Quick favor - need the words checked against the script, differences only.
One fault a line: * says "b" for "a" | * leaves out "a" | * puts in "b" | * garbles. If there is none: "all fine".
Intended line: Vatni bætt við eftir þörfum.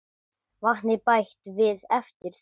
all fine